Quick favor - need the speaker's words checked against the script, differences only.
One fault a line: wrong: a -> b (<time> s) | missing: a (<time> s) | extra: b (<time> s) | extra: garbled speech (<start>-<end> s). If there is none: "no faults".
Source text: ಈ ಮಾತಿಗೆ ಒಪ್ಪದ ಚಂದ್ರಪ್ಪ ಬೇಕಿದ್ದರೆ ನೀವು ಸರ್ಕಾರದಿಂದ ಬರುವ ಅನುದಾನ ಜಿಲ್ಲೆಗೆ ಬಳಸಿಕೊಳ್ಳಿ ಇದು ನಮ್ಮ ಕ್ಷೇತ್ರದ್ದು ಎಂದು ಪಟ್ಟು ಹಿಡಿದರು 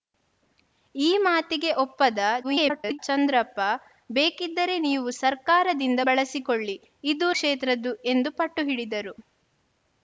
extra: garbled speech (2.4-3.0 s)
missing: ಬರುವ ಅನುದಾನ ಜಿಲ್ಲೆಗೆ (6.0 s)
missing: ನಮ್ಮ (7.3 s)